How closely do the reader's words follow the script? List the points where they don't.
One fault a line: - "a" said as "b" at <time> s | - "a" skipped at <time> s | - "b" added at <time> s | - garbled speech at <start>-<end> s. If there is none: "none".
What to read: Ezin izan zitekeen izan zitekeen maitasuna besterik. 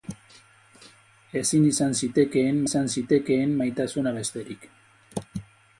none